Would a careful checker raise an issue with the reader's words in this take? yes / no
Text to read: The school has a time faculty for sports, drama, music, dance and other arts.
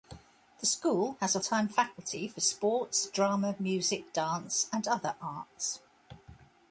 no